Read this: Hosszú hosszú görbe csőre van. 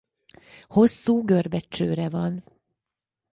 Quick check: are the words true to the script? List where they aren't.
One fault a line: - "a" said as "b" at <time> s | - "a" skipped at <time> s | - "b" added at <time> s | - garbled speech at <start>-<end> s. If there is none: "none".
- "hosszú" skipped at 1.2 s